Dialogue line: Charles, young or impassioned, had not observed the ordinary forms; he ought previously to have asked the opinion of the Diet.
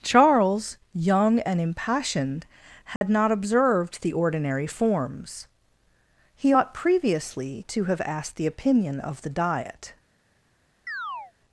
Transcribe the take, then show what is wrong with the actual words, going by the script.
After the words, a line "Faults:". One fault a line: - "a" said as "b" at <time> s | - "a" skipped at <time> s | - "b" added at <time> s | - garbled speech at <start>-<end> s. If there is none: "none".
Charles, young and impassioned, had not observed the ordinary forms; he ought previously to have asked the opinion of the Diet.
Faults:
- "or" said as "and" at 1.4 s